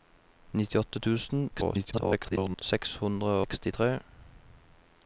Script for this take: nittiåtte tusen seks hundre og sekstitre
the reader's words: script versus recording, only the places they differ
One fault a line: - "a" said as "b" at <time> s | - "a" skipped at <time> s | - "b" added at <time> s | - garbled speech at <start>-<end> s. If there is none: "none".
- garbled speech at 1.5-2.6 s
- "og" skipped at 3.3 s